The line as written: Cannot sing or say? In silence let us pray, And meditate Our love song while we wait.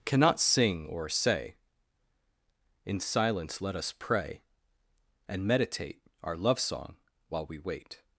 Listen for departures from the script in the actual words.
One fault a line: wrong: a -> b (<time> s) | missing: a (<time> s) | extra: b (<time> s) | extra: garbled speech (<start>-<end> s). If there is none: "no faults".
no faults